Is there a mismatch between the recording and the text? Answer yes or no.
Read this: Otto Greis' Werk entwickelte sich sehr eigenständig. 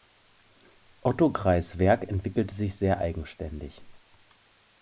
no